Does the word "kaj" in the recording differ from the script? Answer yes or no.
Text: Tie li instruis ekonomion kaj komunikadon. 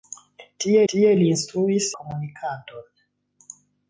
yes